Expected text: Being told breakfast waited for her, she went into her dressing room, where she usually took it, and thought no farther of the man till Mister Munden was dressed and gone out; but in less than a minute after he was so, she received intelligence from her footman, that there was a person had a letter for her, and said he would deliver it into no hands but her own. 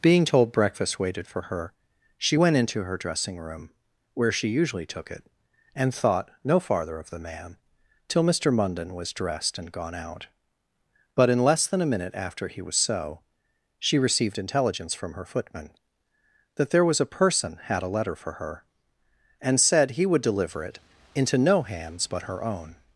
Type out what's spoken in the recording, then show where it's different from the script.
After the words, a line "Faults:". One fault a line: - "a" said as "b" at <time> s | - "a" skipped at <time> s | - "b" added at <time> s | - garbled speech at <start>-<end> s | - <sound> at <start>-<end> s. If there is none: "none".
Being told breakfast waited for her, she went into her dressing room, where she usually took it, and thought no farther of the man till Mister Munden was dressed and gone out; but in less than a minute after he was so, she received intelligence from her footman, that there was a person had a letter for her, and said he would deliver it into no hands but her own.
Faults:
none